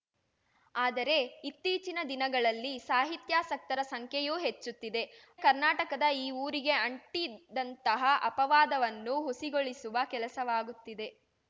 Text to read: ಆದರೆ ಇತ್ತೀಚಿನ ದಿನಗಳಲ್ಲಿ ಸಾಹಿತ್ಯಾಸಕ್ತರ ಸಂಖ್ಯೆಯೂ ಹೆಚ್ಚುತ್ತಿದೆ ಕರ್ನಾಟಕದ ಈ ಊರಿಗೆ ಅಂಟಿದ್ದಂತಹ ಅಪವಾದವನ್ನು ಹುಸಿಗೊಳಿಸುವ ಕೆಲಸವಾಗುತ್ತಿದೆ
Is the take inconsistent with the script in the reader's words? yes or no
no